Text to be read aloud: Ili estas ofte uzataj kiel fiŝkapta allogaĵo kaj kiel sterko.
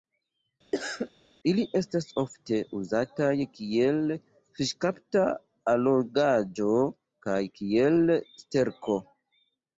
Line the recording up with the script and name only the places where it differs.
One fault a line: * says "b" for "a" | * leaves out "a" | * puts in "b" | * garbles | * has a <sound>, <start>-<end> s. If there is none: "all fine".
* has a cough, 0.7-1.1 s